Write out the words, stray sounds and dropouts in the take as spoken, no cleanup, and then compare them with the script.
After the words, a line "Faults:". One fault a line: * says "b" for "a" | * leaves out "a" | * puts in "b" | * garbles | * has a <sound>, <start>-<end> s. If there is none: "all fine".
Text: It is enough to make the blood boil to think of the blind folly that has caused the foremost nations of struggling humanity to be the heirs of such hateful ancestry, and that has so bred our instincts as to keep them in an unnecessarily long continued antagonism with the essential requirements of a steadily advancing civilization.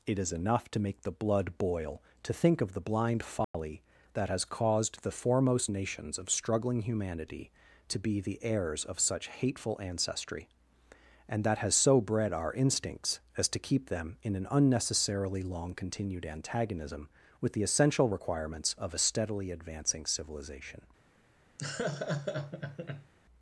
It is enough to make the blood boil to think of the blind folly that has caused the foremost nations of struggling humanity to be the heirs of such hateful ancestry, and that has so bred our instincts as to keep them in an unnecessarily long continued antagonism with the essential requirements of a steadily advancing civilization.
Faults:
* has a dropout, 3.4-3.5 s
* has a laugh, 21.6-23.1 s